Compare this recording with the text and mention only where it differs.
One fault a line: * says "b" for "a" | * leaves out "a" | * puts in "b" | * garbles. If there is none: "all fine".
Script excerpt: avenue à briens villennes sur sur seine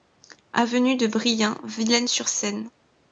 * says "de" for "à"
* leaves out "sur"